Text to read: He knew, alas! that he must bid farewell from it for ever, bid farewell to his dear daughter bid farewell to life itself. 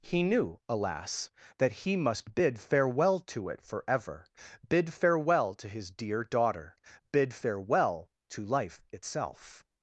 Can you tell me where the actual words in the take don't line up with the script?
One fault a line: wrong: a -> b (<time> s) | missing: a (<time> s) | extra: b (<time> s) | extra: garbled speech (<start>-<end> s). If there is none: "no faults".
wrong: from -> to (3.2 s)